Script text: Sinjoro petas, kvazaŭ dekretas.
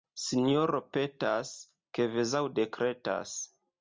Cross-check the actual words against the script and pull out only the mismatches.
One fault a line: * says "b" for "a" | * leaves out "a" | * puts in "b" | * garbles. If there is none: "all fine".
all fine